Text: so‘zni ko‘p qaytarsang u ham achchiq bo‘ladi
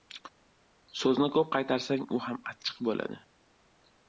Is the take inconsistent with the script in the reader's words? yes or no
no